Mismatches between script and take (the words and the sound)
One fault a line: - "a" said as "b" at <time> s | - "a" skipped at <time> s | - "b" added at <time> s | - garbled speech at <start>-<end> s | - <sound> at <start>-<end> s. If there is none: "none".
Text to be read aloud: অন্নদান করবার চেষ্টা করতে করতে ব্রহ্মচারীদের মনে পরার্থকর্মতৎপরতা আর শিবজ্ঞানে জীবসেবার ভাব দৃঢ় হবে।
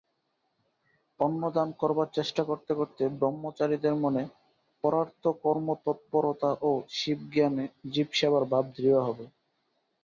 - "আর" said as "ও" at 6.6 s